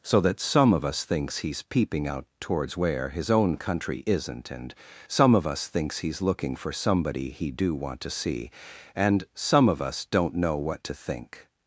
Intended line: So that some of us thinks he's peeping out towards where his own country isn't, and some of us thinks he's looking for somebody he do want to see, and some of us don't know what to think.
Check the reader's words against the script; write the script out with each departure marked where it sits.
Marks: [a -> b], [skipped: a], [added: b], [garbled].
So that some of us thinks he's peeping out towards where his own country isn't, and some of us thinks he's looking for somebody he do want to see, and some of us don't know what to think.